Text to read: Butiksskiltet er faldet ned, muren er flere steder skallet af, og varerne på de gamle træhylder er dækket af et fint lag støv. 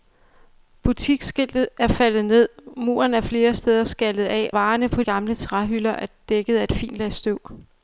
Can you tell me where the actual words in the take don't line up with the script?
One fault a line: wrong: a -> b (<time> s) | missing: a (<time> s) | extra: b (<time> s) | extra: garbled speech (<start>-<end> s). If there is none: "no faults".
missing: og (4.5 s)
missing: de (5.0 s)